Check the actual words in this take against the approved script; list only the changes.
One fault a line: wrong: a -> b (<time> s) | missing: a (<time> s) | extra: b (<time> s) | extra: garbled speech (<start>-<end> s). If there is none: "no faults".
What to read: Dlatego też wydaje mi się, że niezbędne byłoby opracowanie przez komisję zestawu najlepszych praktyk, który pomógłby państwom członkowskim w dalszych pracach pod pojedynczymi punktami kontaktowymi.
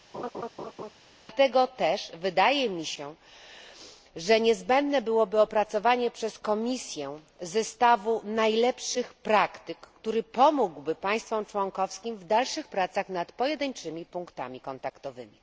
wrong: pod -> nad (13.1 s)